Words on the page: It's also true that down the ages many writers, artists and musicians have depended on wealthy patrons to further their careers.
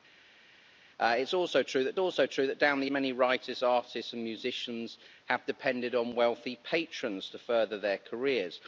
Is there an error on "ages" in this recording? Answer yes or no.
yes